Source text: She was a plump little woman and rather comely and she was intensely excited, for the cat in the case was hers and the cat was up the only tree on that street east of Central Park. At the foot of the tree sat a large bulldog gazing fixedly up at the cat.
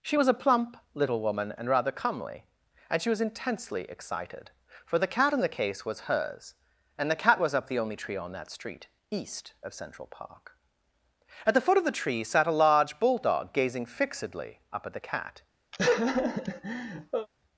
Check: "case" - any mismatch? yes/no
no